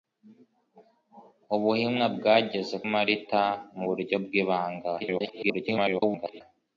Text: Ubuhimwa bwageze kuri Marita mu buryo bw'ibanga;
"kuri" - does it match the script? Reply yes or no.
no